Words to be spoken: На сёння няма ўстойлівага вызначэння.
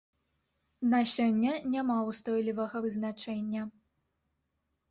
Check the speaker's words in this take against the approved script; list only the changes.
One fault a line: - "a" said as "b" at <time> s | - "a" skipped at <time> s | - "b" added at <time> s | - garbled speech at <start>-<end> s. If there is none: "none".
none